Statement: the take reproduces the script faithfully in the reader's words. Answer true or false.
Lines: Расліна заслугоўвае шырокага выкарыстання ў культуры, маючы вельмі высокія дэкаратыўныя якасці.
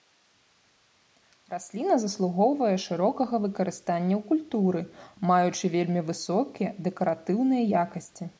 true